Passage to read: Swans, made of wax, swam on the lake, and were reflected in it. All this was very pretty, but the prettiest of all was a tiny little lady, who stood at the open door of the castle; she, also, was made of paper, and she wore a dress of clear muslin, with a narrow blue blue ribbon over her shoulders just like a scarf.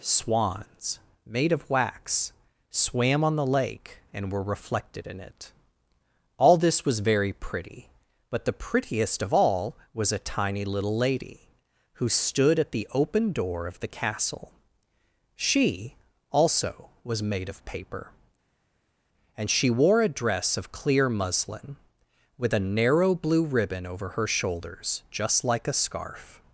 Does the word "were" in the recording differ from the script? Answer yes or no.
no